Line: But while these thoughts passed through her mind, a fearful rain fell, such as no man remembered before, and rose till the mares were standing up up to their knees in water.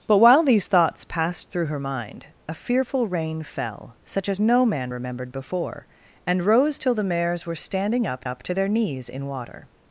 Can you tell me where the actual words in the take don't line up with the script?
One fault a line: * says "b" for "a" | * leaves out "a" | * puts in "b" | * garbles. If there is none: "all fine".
all fine